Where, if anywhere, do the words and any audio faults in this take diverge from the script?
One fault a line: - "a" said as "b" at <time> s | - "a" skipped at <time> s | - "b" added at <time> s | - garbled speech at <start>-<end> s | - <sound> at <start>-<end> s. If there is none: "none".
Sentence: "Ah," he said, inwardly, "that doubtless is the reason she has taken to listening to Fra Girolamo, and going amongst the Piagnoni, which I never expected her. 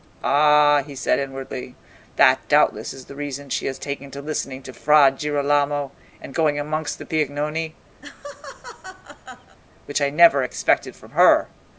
- laugh at 8.0-9.6 s
- "from" added at 11.0 s